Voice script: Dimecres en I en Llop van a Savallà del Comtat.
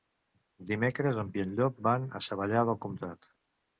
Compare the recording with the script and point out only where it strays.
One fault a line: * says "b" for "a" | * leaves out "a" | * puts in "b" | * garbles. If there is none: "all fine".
all fine